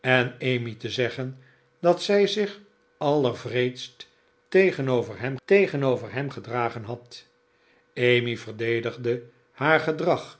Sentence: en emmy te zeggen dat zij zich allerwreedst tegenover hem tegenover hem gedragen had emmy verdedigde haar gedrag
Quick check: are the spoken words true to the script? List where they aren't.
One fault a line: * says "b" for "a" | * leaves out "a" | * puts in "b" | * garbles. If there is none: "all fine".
all fine